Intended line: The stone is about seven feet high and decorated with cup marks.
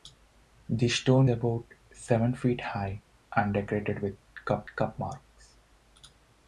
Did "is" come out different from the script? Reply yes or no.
yes